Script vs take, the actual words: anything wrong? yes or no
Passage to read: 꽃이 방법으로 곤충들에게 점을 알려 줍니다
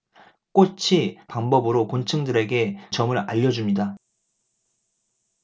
no